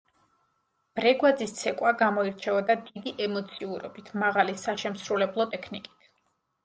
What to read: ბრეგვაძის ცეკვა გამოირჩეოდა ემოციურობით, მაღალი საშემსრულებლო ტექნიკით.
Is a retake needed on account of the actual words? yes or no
yes